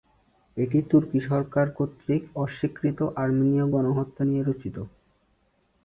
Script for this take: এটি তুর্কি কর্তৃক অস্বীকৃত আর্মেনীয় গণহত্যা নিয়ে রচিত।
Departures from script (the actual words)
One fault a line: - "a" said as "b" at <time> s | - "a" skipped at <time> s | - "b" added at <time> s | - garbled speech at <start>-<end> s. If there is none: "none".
- "সরকার" added at 1.3 s